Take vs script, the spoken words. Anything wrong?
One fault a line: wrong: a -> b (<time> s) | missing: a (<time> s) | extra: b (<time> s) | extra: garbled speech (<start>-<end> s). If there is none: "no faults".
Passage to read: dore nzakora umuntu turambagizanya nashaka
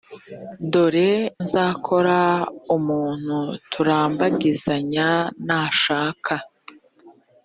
no faults